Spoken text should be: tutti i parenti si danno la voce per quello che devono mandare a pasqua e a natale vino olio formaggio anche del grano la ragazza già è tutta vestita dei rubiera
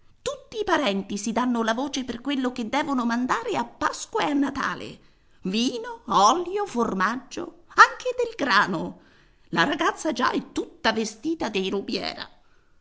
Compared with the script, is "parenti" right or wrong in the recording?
right